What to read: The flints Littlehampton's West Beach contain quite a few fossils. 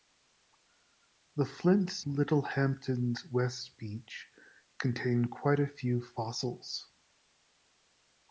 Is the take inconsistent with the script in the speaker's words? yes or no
no